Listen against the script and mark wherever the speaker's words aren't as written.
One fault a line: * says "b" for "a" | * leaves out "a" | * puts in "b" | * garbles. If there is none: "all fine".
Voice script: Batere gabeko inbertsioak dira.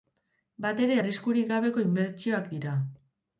* puts in "arriskurik"